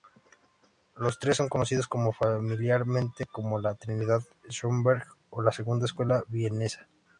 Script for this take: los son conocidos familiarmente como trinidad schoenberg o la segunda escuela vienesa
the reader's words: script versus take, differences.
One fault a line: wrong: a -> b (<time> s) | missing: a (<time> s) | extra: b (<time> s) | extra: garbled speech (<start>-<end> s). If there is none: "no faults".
extra: tres (1.2 s)
extra: la (3.6 s)